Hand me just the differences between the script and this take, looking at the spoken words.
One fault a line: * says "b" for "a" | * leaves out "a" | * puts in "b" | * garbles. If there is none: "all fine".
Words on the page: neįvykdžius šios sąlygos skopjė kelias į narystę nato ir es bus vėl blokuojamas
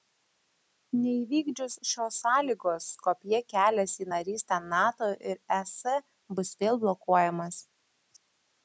all fine